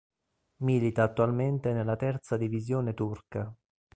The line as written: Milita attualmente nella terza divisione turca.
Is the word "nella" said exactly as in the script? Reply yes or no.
yes